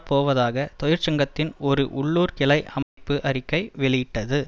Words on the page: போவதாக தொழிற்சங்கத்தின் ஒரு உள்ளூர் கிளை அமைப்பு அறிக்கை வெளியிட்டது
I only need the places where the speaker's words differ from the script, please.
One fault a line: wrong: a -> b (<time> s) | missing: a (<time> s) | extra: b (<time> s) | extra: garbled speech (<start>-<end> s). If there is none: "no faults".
no faults